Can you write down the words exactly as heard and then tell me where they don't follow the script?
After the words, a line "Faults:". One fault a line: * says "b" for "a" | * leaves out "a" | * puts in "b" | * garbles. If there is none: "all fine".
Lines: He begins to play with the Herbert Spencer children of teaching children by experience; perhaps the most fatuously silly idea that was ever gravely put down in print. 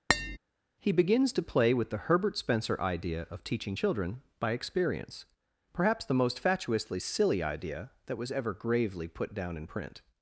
He begins to play with the Herbert Spencer idea of teaching children by experience; perhaps the most fatuously silly idea that was ever gravely put down in print.
Faults:
* says "idea" for "children"